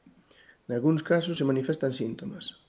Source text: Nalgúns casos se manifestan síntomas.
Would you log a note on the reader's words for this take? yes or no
no